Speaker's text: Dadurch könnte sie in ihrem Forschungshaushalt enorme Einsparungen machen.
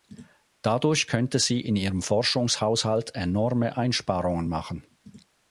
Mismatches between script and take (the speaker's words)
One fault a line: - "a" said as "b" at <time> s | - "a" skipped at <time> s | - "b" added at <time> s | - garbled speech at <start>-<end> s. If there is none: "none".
none